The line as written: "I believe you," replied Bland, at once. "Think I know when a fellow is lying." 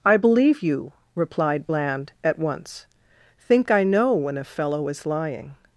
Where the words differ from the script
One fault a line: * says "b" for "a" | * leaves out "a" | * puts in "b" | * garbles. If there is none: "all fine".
all fine